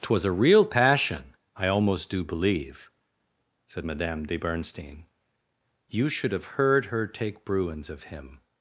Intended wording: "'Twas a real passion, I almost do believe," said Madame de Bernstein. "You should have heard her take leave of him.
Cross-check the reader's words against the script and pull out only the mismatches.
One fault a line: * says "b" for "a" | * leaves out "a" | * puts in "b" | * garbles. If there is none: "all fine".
* says "bruins" for "leave"